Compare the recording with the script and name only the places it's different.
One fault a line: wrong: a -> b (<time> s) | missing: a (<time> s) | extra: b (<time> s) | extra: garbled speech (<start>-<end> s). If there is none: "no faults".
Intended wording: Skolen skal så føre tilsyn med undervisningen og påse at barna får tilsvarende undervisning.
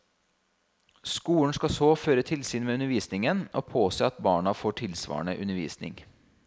no faults